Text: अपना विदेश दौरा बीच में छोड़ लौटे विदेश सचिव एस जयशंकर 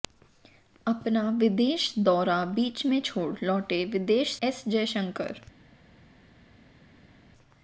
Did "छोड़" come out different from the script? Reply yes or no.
no